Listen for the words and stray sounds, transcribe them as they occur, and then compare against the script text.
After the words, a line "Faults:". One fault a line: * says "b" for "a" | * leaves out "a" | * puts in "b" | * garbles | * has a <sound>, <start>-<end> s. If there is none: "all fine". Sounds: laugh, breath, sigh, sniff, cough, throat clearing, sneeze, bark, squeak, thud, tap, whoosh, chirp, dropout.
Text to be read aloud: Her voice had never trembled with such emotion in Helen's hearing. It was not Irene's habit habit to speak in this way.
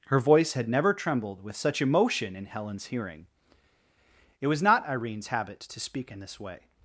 Her voice had never trembled with such emotion in Helen's hearing. It was not Irene's habit to speak in this way.
Faults:
* leaves out "habit"